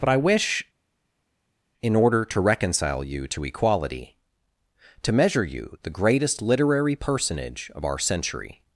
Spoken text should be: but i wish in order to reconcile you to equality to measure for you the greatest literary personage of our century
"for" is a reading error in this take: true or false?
true